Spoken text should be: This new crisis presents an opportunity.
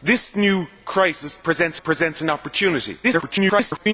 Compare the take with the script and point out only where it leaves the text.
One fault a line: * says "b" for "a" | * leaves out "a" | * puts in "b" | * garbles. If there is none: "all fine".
* puts in "presents"
* garbles